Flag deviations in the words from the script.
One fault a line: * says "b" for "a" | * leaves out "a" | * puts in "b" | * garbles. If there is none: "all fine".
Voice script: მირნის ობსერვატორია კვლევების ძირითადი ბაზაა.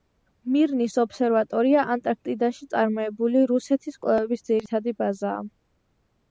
* puts in "ანტარქტიდაში წარმოებული რუსეთის"